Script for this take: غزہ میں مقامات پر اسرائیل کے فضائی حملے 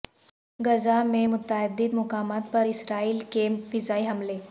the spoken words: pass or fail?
fail